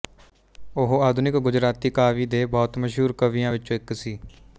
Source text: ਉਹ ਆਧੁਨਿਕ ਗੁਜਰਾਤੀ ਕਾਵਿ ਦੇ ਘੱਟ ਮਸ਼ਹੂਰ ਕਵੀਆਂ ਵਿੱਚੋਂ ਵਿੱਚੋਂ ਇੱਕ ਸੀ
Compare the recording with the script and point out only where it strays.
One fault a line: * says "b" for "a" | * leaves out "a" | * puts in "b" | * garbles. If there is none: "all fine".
* says "ਬਹੁਤ" for "ਘੱਟ"
* leaves out "ਵਿੱਚੋਂ"